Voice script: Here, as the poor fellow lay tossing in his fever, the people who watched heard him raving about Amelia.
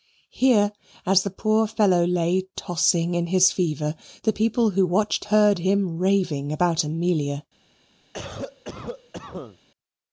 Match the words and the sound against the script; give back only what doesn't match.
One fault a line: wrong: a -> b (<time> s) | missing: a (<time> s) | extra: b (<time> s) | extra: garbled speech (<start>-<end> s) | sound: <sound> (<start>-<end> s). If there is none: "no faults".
sound: cough (8.1-9.6 s)